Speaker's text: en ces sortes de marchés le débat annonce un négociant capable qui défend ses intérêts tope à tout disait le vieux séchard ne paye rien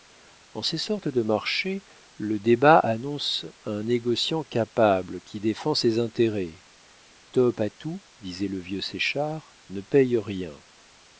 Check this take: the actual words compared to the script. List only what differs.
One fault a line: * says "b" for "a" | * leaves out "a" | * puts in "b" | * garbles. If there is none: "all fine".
all fine